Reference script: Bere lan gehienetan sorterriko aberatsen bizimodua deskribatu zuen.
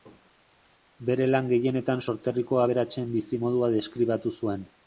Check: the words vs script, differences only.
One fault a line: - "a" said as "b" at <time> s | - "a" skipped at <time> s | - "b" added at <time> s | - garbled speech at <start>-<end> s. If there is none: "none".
none